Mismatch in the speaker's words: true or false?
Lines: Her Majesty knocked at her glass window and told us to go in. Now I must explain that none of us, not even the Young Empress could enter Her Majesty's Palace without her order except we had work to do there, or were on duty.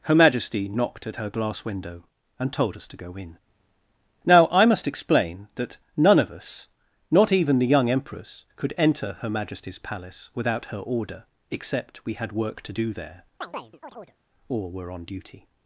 false